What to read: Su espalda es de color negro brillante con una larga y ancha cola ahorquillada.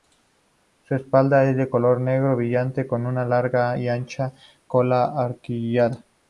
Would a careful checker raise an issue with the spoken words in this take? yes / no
no